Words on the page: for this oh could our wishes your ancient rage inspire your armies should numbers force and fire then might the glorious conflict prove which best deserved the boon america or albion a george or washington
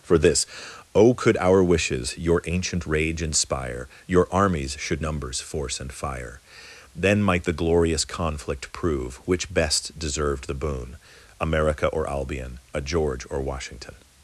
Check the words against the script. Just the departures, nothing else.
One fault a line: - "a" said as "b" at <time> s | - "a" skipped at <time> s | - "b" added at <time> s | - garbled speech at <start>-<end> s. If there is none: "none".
none